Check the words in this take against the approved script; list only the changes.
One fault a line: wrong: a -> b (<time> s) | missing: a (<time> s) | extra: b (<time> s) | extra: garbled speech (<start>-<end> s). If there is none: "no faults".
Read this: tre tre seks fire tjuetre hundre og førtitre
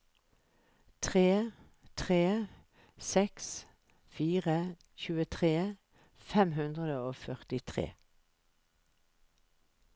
extra: fem (6.3 s)